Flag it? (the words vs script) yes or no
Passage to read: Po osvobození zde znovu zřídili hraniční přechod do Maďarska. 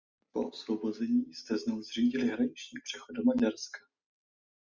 no